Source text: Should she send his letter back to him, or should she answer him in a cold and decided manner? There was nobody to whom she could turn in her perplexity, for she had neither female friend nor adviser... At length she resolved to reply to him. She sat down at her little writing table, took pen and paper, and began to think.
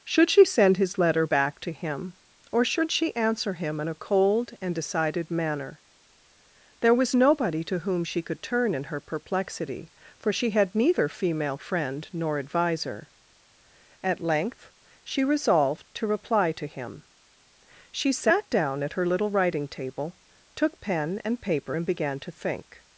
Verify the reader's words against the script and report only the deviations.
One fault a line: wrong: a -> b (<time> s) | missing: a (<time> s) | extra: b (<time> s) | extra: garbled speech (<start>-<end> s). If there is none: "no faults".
no faults